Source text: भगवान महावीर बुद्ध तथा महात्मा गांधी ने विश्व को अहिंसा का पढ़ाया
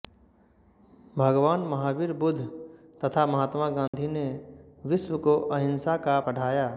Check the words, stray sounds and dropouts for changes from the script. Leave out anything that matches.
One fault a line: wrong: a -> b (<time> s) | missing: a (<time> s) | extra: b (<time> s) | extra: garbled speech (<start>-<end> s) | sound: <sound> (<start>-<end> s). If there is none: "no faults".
sound: dropout (3.9-3.9 s)